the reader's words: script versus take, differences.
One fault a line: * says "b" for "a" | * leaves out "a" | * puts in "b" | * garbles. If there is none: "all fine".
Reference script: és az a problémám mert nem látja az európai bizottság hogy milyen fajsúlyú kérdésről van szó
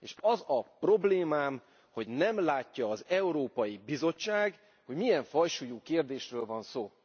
* says "hogy" for "mert"